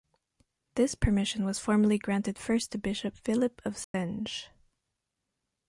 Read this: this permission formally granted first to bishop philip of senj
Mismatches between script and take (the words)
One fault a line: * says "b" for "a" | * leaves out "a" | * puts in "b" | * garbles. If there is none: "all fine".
* puts in "was"